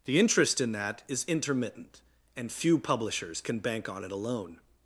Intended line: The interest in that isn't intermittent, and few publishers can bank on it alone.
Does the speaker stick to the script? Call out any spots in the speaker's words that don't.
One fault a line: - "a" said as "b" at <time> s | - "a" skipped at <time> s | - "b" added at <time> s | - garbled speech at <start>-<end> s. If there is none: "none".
- "isn't" said as "is" at 1.1 s